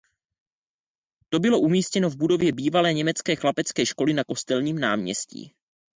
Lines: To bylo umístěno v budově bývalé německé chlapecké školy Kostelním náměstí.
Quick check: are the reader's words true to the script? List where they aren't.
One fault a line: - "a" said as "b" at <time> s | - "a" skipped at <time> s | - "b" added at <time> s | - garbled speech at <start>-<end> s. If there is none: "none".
- "na" added at 4.1 s